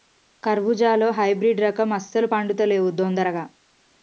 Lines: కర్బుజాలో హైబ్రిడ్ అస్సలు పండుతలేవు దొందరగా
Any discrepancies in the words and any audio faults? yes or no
yes